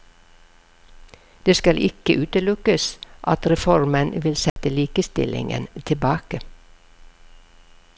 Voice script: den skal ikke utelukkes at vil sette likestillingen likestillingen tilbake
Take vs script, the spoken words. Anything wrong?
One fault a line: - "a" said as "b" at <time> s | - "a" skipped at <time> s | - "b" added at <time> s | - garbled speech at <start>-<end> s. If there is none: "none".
- "den" said as "det" at 1.4 s
- "reformen" added at 3.5 s
- "likestillingen" skipped at 5.7 s